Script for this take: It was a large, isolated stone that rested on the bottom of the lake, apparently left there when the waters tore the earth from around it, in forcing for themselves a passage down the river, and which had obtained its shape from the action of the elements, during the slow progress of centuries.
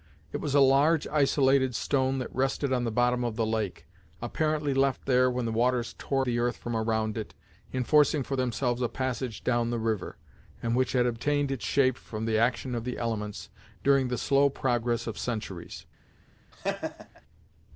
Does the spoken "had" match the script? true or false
true